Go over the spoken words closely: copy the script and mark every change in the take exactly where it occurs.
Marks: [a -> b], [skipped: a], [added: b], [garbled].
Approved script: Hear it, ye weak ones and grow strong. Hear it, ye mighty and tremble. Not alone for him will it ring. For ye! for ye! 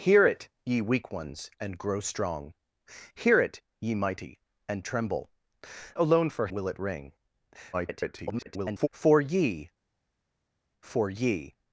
Hear it, ye weak ones and grow strong. Hear it, ye mighty and tremble. [skipped: Not] alone for [skipped: him] will it ring. [garbled] For ye! for ye!